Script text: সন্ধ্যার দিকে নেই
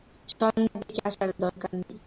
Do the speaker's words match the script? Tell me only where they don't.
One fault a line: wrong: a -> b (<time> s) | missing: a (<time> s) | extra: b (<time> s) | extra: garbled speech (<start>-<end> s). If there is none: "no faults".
extra: আসার দরকার (1.1 s)